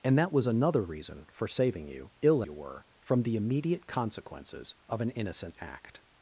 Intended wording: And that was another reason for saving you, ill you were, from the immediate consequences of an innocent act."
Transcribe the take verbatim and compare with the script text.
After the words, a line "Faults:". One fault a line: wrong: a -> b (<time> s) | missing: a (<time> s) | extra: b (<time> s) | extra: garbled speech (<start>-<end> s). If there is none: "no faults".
And that was another reason for saving you, ill you were, from the immediate consequences of an innocent act."
Faults:
no faults